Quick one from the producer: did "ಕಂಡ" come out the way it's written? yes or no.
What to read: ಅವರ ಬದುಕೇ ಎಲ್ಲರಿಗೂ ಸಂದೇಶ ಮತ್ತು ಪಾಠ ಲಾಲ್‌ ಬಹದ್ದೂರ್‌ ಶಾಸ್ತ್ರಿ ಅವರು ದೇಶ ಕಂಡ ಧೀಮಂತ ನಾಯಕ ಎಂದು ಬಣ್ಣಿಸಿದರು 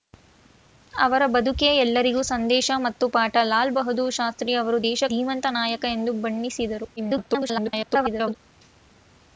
no